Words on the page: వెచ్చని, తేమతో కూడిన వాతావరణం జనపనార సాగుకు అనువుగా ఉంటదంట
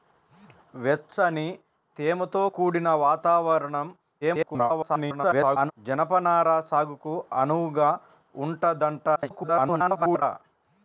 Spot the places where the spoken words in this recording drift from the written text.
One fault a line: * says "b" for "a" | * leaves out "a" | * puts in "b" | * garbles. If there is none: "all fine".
* garbles
* garbles